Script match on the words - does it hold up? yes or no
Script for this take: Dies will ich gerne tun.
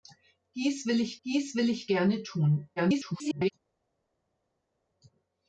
no